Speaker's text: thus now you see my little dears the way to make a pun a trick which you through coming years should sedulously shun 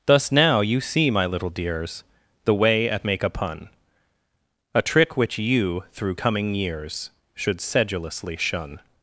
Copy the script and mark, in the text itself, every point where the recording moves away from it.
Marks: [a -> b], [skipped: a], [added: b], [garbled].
thus now you see my little dears the way [to -> at] make a pun a trick which you through coming years should sedulously shun